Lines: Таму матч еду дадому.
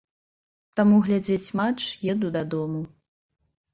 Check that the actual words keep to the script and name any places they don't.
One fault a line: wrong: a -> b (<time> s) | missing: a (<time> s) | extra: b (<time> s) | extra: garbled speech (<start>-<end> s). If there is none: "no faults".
extra: глядзець (1.1 s)